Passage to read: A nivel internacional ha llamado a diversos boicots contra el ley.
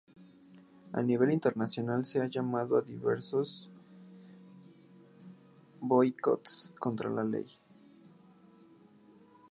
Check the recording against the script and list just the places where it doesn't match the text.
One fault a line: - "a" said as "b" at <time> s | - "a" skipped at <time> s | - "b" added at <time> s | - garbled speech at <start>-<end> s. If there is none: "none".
- "se" added at 2.0 s
- "el" said as "la" at 7.1 s